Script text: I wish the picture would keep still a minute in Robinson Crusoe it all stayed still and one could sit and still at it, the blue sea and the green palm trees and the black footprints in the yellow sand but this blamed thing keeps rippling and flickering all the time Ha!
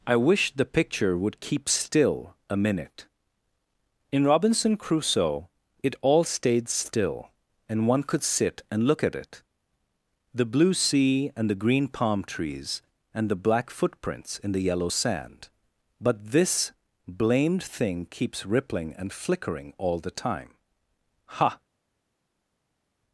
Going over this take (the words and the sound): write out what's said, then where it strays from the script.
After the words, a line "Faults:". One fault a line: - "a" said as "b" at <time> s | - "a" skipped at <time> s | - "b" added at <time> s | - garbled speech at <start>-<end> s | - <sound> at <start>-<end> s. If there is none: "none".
I wish the picture would keep still a minute in Robinson Crusoe it all stayed still and one could sit and look at it, the blue sea and the green palm trees and the black footprints in the yellow sand but this blamed thing keeps rippling and flickering all the time Ha!
Faults:
- "still" said as "look" at 8.9 s